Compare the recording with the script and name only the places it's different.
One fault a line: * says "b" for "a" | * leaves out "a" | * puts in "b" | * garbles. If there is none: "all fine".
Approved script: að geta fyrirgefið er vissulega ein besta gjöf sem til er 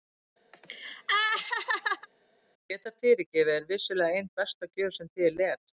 all fine